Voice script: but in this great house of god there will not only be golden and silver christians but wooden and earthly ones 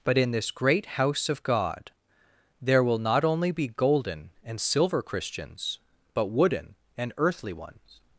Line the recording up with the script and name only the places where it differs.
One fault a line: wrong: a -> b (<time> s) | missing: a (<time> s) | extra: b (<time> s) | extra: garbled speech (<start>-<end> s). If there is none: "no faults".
no faults